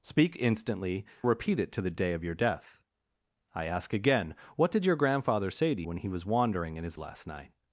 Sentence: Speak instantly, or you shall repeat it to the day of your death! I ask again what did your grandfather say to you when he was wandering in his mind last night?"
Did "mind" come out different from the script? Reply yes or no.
yes